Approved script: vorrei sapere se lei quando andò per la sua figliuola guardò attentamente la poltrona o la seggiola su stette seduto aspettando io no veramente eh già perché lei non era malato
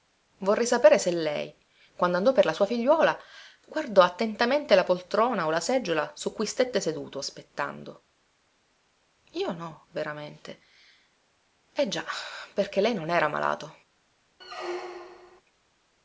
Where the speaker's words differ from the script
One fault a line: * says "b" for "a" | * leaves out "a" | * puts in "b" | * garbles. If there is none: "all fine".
* puts in "cui"